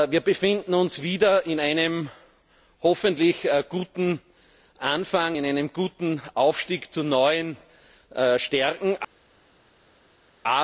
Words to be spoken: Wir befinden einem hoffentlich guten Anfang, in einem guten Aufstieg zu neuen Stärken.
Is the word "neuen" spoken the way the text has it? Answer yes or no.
yes